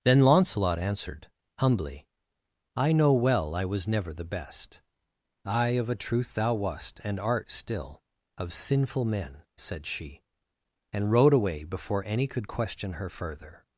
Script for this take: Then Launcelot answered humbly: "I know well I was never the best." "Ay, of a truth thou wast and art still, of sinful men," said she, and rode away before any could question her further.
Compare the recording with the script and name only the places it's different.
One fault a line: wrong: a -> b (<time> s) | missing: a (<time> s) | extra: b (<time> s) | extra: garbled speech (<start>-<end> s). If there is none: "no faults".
no faults